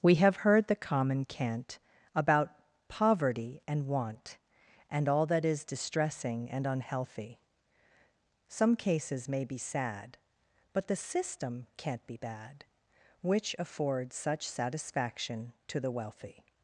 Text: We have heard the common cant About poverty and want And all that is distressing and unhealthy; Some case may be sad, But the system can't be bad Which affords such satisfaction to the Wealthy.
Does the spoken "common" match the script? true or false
true